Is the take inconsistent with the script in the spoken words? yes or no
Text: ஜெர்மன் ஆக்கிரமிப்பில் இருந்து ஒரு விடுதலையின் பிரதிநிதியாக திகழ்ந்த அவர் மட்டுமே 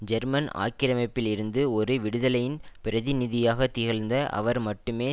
no